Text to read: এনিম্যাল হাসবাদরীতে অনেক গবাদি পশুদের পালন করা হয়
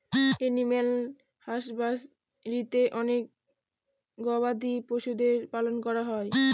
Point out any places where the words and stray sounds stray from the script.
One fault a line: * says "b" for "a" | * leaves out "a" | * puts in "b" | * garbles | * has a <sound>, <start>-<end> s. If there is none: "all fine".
all fine